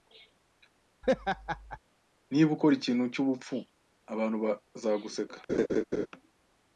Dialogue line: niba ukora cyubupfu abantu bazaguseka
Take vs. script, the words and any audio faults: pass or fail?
fail